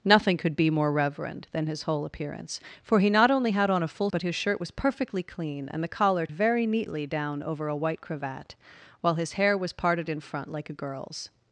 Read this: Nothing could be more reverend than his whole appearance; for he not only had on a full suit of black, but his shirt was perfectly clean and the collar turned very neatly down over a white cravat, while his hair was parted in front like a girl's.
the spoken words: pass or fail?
fail